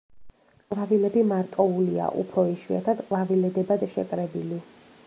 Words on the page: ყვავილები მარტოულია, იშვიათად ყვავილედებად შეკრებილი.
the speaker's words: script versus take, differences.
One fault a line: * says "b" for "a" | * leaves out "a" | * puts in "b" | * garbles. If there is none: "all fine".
* puts in "უფრო"